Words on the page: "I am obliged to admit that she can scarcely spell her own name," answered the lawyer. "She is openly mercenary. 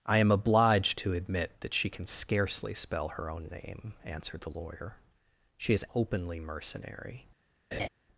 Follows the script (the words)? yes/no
yes